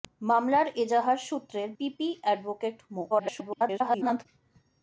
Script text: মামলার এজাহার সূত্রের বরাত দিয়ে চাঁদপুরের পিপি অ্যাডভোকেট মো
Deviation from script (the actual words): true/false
true